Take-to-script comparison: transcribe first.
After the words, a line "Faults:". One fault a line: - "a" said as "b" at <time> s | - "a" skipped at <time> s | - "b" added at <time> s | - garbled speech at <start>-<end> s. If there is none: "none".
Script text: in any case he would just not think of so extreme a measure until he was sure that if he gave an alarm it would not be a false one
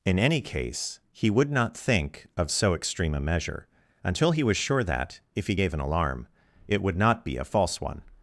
in any case he would not think of so extreme a measure until he was sure that if he gave an alarm it would not be a false one
Faults:
- "just" skipped at 1.5 s